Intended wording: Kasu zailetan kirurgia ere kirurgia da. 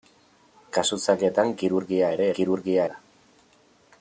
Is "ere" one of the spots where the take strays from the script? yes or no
no